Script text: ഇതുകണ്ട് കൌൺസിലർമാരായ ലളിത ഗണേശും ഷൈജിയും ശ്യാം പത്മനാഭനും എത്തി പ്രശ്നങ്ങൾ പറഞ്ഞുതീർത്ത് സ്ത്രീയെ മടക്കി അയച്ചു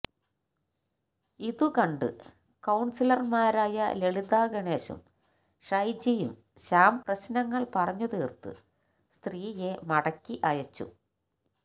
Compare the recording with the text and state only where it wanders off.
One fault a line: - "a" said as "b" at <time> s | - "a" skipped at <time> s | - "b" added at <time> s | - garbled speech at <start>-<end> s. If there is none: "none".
- "പത്മനാഭനും എത്തി" skipped at 7.0 s